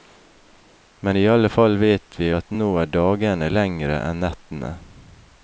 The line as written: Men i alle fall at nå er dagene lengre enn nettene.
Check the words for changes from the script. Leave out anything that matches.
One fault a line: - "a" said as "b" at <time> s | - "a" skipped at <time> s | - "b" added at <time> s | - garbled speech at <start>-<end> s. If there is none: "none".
- "vet vi" added at 1.8 s